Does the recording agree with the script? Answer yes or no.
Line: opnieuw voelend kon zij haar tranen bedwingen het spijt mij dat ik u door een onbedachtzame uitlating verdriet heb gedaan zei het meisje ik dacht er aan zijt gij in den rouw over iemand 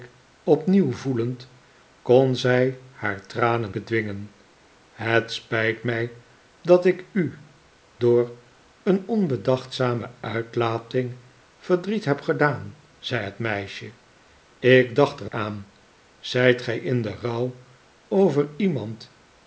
yes